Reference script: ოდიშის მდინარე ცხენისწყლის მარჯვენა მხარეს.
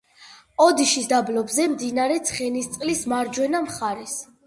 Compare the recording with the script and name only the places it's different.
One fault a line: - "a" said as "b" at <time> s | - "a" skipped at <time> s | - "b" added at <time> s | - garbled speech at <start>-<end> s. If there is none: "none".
- "დაბლობზე" added at 1.1 s